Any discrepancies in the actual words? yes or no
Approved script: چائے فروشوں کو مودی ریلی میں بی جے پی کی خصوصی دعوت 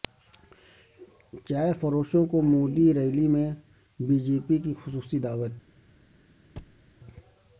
no